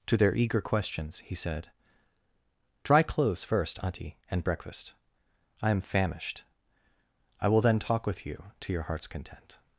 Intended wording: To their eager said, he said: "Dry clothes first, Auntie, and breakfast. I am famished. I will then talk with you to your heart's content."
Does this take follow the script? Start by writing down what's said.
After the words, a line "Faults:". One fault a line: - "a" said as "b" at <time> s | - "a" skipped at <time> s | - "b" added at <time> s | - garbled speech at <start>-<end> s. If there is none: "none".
To their eager questions, he said: "Dry clothes first, Auntie, and breakfast. I am famished. I will then talk with you to your heart's content."
Faults:
- "said" said as "questions" at 0.6 s